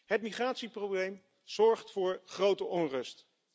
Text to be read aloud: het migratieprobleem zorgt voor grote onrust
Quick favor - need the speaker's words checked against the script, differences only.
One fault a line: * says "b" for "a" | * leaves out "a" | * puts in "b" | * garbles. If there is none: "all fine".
all fine